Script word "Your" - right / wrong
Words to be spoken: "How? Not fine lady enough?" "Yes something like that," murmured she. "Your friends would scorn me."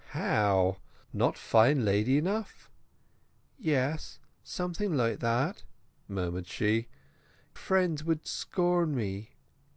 wrong